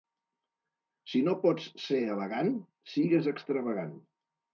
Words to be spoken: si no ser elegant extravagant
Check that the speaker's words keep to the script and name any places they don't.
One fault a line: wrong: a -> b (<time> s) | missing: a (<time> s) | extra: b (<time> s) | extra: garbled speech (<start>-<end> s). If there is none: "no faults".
extra: pots (1.4 s)
extra: sigues (3.0 s)